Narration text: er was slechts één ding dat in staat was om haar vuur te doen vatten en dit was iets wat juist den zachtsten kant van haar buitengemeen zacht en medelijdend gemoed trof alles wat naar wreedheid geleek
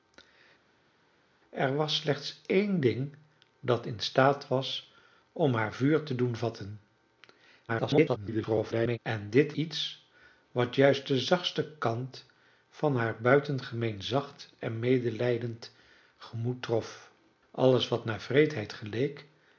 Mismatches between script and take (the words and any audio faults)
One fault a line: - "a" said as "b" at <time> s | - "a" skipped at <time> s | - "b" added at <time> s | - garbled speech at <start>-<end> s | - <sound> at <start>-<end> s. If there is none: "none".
- garbled speech at 7.7-9.0 s
- "was" skipped at 9.5 s